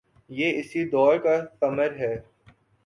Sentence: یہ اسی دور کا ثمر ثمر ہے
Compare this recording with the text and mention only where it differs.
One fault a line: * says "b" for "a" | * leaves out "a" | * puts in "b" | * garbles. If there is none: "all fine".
* leaves out "ثمر"